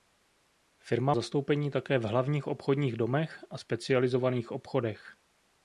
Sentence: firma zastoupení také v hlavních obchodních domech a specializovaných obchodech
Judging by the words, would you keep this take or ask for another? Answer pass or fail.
pass